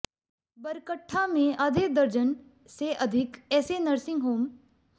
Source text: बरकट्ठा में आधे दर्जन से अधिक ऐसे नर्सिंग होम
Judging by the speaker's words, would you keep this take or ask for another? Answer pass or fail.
pass